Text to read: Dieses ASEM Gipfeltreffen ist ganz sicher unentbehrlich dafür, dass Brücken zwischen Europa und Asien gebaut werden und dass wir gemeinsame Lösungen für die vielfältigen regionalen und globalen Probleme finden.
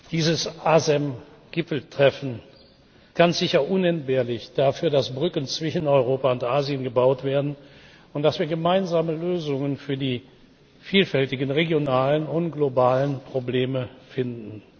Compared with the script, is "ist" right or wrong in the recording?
wrong